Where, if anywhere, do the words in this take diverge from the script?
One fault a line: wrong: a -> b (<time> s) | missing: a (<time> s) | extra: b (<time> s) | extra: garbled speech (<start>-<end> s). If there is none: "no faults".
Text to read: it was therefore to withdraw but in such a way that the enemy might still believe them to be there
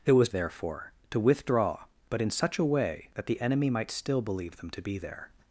no faults